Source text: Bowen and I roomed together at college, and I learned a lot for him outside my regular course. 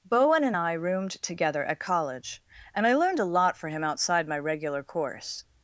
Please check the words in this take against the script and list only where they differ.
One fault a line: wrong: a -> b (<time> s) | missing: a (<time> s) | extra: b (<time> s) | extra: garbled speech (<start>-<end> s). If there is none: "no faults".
no faults